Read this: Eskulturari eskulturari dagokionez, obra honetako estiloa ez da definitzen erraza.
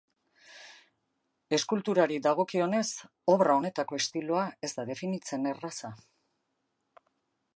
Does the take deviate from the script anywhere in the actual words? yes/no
yes